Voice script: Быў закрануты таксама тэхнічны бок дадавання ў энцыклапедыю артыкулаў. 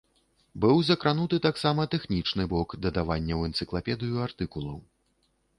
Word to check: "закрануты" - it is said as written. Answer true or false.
true